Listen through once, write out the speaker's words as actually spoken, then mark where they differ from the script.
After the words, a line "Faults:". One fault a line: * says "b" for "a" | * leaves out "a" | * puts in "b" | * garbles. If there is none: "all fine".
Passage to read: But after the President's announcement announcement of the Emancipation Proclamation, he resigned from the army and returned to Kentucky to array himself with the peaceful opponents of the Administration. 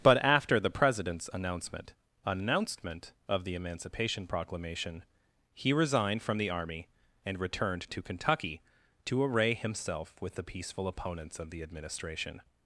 But after the President's announcement announcement of the Emancipation Proclamation, he resigned from the army and returned to Kentucky to array himself with the peaceful opponents of the Administration.
Faults:
all fine